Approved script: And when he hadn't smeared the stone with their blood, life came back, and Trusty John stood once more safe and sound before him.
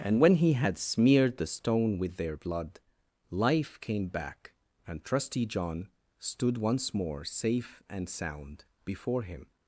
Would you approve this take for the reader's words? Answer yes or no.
no